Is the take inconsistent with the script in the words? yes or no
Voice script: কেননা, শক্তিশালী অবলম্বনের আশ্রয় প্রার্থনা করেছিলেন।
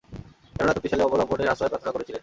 no